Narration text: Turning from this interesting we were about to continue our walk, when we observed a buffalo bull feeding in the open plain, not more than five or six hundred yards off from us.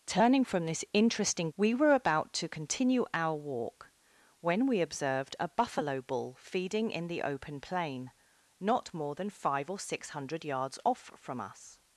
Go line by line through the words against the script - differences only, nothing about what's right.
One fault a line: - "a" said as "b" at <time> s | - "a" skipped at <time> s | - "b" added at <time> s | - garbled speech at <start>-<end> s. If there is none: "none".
none